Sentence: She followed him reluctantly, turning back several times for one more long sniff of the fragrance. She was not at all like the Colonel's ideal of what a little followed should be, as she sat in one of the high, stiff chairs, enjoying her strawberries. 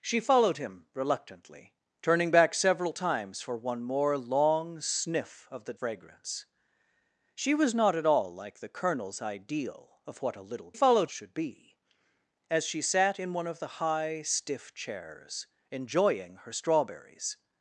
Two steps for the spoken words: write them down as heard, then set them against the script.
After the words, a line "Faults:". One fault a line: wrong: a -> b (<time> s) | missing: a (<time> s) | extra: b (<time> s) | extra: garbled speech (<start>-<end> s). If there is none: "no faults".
She followed him reluctantly, turning back several times for one more long sniff of the fragrance. She was not at all like the Colonel's ideal of what a little followed should be, as she sat in one of the high, stiff chairs, enjoying her strawberries.
Faults:
no faults